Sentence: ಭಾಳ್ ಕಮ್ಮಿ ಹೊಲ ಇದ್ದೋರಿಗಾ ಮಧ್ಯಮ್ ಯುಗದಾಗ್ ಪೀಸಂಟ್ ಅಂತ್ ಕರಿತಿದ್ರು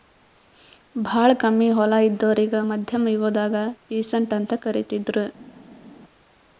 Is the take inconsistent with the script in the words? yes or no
no